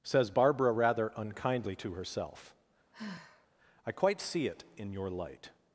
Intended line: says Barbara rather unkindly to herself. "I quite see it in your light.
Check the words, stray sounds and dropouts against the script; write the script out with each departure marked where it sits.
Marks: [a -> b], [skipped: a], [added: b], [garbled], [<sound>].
says Barbara rather unkindly to herself. [sigh] "I quite see it in your light.